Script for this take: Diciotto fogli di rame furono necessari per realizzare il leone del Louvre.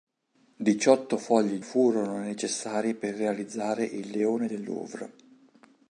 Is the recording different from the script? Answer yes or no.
yes